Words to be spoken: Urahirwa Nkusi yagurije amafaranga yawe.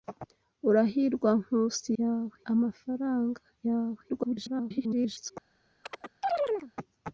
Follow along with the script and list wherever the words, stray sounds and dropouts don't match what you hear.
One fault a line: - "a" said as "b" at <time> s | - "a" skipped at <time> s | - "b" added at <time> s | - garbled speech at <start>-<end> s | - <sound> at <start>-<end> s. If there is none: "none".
- "yagurije" said as "yawe" at 2.0 s
- garbled speech at 4.1-5.3 s
- chirp at 5.8-6.7 s